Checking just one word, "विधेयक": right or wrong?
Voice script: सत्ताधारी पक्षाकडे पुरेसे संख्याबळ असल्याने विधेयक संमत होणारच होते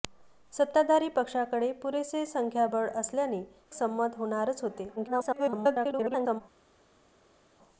wrong